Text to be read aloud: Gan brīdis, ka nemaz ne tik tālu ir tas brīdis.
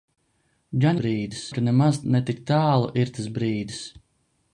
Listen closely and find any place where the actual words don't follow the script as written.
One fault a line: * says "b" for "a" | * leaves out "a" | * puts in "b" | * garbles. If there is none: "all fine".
all fine